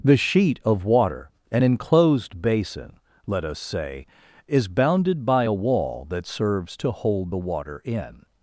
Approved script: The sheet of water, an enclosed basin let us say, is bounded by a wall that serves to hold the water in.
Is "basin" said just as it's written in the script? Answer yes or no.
yes